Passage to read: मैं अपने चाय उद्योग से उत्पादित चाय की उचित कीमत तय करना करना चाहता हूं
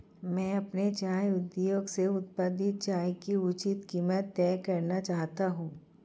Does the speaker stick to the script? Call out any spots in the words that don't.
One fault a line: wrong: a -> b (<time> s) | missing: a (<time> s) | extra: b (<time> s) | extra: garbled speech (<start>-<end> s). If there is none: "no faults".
missing: करना (5.0 s)